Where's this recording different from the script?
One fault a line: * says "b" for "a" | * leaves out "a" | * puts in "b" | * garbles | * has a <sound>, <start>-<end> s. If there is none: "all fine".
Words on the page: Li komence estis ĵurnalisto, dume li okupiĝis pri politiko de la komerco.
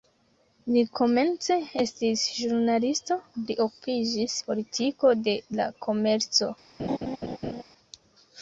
* leaves out "dume"
* leaves out "pri"
* has a laugh, 6.8-7.6 s